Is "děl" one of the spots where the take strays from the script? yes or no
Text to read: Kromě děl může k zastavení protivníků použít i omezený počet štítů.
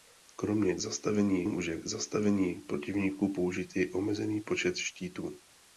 yes